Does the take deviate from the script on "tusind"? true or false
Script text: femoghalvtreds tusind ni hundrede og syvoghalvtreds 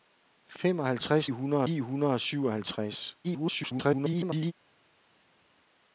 true